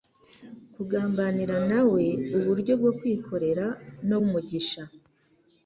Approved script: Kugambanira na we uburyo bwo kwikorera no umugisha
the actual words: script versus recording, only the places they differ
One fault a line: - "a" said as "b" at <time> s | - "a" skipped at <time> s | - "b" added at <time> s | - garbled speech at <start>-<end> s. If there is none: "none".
none